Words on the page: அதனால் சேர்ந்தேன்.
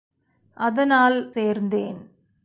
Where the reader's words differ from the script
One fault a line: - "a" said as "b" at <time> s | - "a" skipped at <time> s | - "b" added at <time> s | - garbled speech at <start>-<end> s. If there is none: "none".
none